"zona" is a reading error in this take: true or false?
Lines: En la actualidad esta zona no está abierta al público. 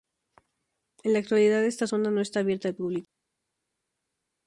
false